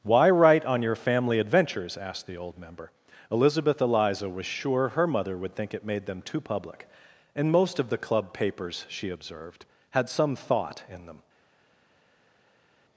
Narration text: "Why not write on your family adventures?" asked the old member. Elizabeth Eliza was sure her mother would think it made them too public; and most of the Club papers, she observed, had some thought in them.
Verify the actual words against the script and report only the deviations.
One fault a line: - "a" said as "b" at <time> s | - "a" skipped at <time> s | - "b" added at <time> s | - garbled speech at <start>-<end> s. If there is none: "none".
- "not" skipped at 0.3 s